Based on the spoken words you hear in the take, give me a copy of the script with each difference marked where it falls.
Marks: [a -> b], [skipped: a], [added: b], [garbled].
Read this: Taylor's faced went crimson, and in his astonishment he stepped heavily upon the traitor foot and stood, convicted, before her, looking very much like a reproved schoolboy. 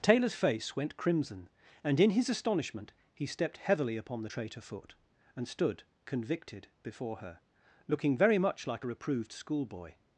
Taylor's [faced -> face] went crimson, and in his astonishment he stepped heavily upon the traitor foot and stood, convicted, before her, looking very much like a reproved schoolboy.